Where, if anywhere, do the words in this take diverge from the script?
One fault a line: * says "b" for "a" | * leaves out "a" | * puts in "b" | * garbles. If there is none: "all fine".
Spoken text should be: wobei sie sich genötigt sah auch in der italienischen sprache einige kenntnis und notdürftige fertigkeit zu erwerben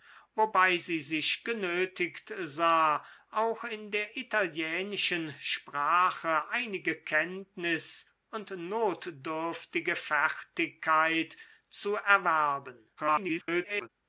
* garbles